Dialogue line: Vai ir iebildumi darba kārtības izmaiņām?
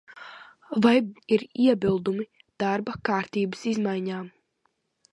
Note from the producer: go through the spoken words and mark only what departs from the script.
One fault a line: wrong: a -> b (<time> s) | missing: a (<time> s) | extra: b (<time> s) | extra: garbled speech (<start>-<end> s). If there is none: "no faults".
no faults